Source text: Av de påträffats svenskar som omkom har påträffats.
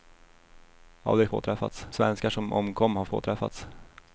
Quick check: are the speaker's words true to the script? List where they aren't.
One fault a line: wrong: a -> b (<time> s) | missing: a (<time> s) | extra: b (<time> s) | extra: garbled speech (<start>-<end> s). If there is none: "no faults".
no faults